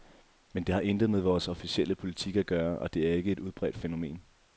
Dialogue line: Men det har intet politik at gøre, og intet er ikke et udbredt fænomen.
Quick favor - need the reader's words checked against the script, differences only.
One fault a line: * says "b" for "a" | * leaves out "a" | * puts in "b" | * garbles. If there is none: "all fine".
* puts in "med vores officielle"
* says "det" for "intet"